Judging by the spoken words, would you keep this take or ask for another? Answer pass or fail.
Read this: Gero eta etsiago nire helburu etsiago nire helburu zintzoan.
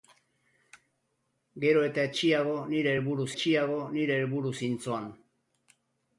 pass